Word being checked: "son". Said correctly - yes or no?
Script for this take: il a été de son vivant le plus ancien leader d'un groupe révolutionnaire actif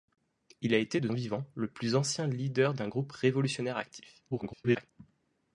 no